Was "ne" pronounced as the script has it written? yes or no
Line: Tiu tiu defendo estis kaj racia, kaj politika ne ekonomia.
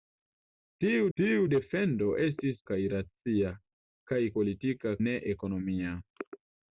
yes